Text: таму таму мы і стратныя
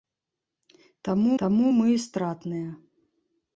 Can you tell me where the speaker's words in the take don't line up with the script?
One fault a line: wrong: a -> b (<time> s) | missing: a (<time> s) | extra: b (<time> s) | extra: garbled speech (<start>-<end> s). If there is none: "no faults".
no faults